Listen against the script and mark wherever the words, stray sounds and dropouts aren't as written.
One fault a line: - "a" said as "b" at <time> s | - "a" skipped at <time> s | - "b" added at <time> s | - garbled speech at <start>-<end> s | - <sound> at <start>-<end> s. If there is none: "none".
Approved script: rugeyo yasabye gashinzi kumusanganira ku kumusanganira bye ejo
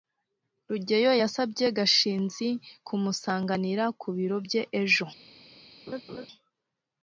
- "kumusanganira" said as "biro" at 4.2 s
- laugh at 5.9-6.3 s